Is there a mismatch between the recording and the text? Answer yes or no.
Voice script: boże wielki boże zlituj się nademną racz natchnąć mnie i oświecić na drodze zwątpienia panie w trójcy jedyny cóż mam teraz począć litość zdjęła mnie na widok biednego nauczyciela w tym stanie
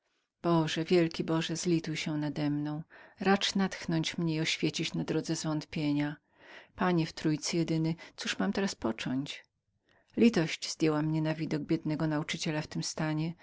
no